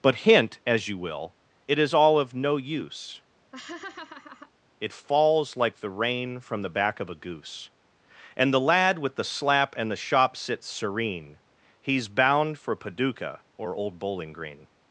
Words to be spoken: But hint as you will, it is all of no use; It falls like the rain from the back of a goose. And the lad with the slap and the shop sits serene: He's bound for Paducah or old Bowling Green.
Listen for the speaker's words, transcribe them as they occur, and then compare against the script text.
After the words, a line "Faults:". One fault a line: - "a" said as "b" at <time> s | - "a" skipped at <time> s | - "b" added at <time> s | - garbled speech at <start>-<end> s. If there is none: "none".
But hint as you will, it is all of no use; It falls like the rain from the back of a goose. And the lad with the slap and the shop sits serene: He's bound for Paducah or old Bowling Green.
Faults:
none